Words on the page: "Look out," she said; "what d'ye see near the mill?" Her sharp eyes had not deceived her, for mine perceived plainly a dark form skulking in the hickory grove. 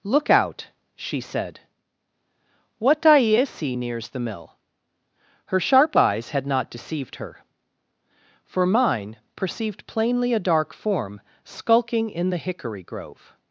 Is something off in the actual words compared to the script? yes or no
yes